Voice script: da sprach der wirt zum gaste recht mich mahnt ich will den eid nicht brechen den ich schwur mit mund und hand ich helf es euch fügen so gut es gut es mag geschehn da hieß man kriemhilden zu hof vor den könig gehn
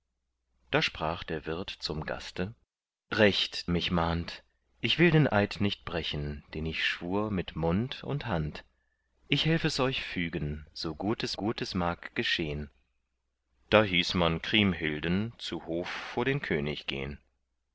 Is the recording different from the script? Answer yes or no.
no